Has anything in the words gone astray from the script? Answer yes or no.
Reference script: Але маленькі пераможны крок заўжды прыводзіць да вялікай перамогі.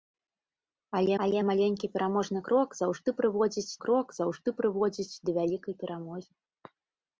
yes